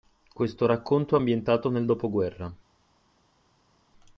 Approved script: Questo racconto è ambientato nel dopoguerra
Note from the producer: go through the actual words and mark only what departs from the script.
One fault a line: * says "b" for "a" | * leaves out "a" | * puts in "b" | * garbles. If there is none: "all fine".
all fine